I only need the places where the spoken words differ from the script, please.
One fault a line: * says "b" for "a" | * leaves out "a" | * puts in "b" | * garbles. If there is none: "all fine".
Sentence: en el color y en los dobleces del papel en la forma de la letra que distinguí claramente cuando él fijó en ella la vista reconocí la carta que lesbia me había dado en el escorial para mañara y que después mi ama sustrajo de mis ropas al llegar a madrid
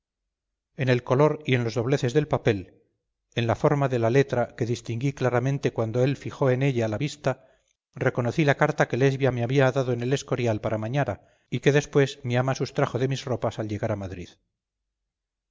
all fine